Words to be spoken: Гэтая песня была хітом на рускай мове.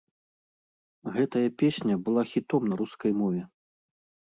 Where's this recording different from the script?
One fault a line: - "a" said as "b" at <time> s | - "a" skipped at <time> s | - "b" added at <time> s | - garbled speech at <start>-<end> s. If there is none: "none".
none